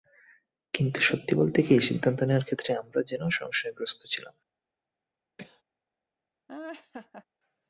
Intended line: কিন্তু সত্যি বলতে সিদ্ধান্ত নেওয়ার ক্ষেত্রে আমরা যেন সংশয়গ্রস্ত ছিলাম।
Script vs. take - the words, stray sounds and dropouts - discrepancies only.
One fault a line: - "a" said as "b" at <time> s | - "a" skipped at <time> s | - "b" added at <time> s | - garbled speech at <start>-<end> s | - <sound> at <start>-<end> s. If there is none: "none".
- "কি" added at 1.6 s
- cough at 5.4-5.6 s
- laugh at 6.5-7.3 s